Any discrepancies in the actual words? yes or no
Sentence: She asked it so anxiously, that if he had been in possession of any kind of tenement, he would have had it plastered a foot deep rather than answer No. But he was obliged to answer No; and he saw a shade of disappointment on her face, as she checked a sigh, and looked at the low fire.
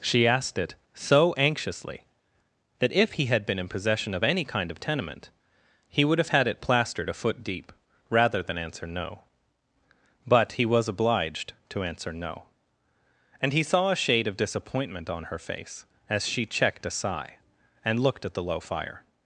no